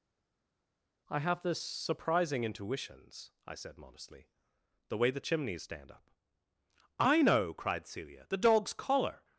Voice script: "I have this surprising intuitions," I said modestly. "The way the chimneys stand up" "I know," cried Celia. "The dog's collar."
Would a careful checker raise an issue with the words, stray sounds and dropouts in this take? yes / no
no